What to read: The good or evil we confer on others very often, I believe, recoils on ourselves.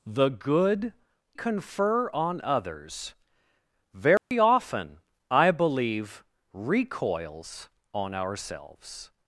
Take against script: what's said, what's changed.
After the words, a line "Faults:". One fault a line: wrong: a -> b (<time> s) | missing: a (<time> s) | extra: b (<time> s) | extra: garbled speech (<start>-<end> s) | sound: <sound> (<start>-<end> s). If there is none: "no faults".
The good confer on others very often, I believe, recoils on ourselves.
Faults:
missing: or evil we (0.9 s)
sound: dropout (4.2-4.3 s)